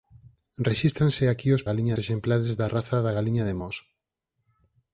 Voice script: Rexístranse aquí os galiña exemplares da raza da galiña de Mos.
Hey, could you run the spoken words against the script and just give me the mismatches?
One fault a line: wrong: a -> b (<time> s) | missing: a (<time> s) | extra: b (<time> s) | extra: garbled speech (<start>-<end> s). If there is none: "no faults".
no faults